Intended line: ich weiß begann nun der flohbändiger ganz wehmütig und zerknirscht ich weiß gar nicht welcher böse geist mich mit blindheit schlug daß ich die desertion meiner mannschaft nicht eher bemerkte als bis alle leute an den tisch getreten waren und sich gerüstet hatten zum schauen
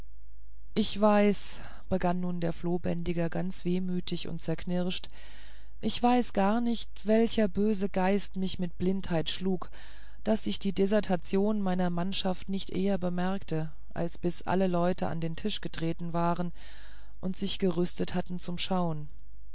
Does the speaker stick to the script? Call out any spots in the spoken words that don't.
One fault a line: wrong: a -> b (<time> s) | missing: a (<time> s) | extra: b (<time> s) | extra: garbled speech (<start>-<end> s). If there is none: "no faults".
no faults